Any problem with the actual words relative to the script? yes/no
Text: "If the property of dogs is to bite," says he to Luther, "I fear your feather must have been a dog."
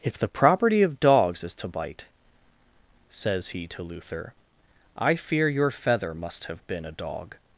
no